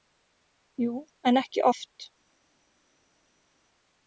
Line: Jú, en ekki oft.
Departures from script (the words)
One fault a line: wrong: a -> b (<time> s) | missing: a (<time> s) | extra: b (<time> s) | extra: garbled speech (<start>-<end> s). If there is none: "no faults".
no faults